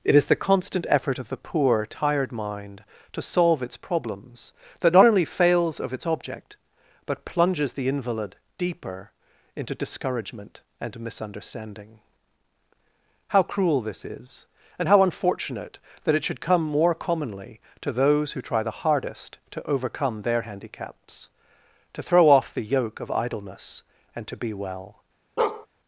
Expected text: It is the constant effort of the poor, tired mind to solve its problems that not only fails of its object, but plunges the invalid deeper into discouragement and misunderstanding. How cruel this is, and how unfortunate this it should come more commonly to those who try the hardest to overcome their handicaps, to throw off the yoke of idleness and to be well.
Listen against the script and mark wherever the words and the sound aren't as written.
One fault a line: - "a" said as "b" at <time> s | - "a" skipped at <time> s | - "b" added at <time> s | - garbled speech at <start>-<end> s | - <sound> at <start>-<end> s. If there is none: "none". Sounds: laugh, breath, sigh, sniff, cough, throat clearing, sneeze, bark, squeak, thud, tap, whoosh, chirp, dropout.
- "this" said as "that" at 16.0 s
- bark at 25.4-25.7 s